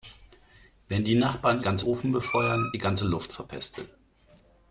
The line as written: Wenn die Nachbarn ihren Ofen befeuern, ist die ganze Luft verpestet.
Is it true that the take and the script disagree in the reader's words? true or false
true